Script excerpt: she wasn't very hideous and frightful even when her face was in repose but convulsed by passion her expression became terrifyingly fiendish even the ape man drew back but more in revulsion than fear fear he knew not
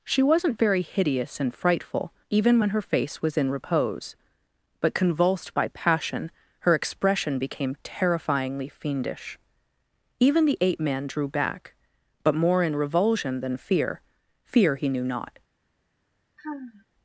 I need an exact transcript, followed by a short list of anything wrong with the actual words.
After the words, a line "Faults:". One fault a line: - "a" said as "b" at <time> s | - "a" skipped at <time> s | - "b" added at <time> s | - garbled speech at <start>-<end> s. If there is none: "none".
she wasn't very hideous and frightful even when her face was in repose but convulsed by passion her expression became terrifyingly fiendish even the ape man drew back but more in revulsion than fear fear he knew not
Faults:
none